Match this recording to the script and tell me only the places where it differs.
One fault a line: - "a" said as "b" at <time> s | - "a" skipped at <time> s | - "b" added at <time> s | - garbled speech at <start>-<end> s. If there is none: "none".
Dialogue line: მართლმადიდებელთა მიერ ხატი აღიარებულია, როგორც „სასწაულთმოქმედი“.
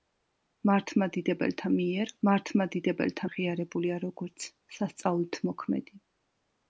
- "ხატი" said as "მართლმადიდებელთა" at 2.3 s